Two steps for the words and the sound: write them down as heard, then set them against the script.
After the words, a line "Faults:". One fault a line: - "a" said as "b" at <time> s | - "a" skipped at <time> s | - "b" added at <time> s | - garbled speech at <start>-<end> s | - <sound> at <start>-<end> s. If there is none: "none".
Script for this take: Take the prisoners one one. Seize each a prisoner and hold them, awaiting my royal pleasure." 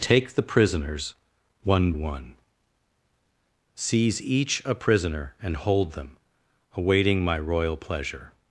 Take the prisoners one one. Seize each a prisoner and hold them, awaiting my royal pleasure."
Faults:
none